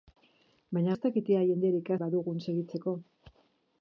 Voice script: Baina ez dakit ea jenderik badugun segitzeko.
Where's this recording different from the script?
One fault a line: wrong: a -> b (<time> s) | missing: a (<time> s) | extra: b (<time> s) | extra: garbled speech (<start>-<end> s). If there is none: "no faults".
no faults